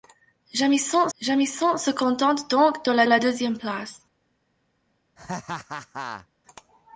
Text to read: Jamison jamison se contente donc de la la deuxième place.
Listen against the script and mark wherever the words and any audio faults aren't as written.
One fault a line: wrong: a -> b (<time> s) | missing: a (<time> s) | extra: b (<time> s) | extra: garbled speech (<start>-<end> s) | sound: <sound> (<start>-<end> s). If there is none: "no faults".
sound: laugh (5.2-6.3 s)